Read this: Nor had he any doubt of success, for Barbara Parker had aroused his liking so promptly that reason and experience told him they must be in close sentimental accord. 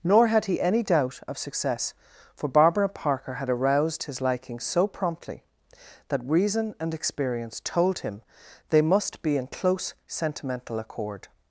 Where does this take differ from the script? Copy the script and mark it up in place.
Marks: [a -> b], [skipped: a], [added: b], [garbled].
Nor had he any doubt of success, for Barbara Parker had aroused his liking so promptly that reason and experience told him they must be in close sentimental accord.